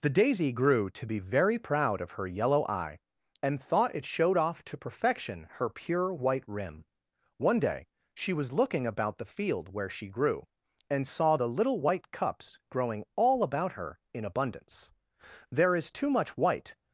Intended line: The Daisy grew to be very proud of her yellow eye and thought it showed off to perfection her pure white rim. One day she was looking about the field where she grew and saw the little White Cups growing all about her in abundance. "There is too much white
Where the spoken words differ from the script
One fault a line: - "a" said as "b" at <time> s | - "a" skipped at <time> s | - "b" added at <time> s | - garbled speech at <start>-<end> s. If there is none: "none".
none